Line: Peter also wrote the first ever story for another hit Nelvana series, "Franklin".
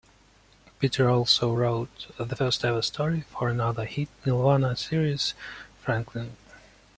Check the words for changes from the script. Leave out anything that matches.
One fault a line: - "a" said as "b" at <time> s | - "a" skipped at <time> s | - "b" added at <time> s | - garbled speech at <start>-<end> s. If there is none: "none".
none